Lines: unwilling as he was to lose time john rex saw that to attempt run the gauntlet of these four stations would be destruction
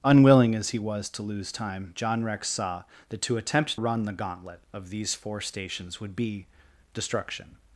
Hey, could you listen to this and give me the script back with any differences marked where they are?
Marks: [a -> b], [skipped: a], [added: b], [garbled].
unwilling as he was to lose time john rex saw that to attempt run the gauntlet of these four stations would be destruction